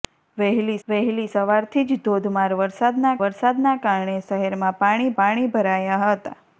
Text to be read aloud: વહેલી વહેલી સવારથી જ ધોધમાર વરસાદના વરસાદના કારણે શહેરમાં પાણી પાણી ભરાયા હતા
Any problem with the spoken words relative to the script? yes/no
no